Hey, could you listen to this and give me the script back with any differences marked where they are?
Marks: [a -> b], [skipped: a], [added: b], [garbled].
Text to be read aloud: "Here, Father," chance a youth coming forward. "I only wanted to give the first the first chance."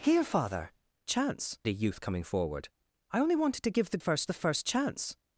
"Here, Father," chance a youth coming forward. "I only wanted to give the first the first chance."